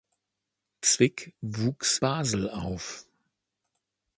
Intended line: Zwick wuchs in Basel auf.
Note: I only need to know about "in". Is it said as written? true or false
false